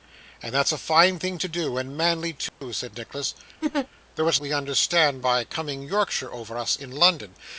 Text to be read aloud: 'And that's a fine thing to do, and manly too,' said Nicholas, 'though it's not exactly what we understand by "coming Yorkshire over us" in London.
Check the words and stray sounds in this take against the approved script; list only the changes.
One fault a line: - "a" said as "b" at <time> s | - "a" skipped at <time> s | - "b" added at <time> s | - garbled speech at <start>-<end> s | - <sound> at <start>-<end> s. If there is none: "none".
- dropout at 2.5-2.6 s
- laugh at 3.6-3.9 s
- "not exactly what" skipped at 4.4 s